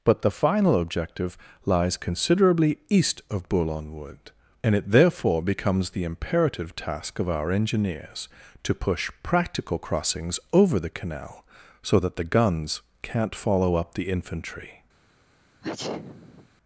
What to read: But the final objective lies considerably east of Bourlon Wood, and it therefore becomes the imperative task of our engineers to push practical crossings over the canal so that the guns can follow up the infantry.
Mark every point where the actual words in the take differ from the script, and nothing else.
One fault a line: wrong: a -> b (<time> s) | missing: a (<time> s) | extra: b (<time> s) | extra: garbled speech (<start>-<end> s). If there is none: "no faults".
wrong: can -> can't (13.0 s)